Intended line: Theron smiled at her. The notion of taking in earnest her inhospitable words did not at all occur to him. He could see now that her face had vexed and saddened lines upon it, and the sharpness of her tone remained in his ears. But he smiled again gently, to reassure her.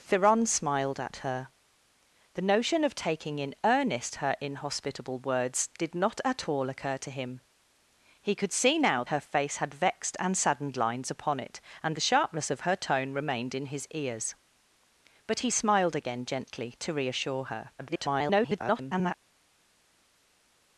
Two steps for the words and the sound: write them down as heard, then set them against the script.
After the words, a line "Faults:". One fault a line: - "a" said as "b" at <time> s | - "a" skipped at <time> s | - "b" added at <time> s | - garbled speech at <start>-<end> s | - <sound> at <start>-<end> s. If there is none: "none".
Theron smiled at her. The notion of taking in earnest her inhospitable words did not at all occur to him. He could see now her face had vexed and saddened lines upon it, and the sharpness of her tone remained in his ears. But he smiled again gently, to reassure her. [garbled]
Faults:
- "that" skipped at 9.0 s
- garbled speech at 17.8-19.1 s